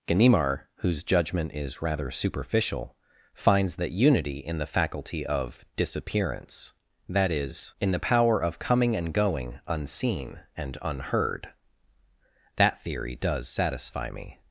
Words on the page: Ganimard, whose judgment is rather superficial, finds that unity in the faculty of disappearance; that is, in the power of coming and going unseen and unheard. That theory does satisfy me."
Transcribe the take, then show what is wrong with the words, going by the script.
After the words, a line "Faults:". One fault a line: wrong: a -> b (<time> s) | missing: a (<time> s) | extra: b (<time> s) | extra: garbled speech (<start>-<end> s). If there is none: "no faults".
Ganimard, whose judgment is rather superficial, finds that unity in the faculty of disappearance; that is, in the power of coming and going unseen and unheard. That theory does satisfy me."
Faults:
no faults